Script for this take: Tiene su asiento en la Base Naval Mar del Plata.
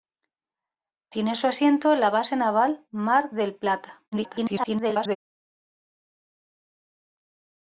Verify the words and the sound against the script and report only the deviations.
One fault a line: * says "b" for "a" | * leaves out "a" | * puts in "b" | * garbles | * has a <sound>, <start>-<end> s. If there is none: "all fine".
* garbles